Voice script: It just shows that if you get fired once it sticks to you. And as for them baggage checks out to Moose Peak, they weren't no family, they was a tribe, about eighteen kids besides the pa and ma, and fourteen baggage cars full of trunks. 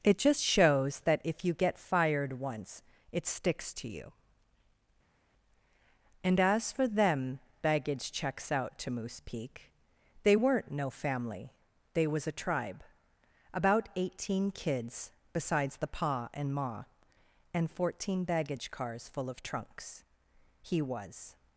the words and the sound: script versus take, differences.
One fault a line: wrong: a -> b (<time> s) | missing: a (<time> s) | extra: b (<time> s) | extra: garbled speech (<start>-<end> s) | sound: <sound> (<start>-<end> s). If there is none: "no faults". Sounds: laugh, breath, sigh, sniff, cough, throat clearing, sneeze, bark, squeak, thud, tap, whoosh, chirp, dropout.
extra: He was (20.6 s)